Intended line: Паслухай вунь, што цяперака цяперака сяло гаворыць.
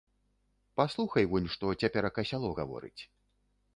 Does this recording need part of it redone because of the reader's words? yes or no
yes